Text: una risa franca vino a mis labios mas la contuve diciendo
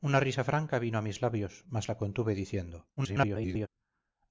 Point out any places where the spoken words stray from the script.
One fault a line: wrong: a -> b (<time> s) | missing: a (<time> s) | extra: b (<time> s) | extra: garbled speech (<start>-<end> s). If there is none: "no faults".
extra: garbled speech (3.0-3.7 s)